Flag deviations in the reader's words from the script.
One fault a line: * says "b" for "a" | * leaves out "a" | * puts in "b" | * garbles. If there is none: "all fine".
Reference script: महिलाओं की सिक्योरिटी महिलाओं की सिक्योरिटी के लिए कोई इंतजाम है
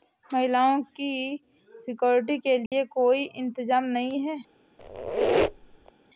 * leaves out "महिलाओं की सिक्योरिटी"
* puts in "नहीं"